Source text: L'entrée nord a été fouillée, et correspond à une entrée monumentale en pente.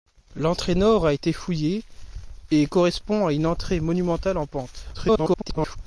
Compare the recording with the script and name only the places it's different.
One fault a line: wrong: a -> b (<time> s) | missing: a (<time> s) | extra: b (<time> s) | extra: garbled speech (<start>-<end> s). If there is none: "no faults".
extra: garbled speech (4.9-5.8 s)